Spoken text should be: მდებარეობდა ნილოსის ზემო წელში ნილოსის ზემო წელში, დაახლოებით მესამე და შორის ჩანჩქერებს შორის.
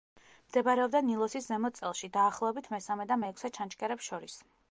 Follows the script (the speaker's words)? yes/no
no